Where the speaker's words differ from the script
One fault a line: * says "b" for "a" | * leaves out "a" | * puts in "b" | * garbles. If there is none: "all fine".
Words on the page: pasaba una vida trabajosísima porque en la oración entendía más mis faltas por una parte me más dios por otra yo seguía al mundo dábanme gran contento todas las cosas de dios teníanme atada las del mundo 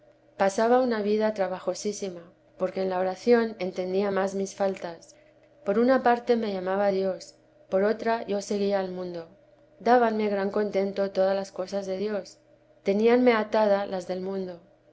* says "llamaba" for "más"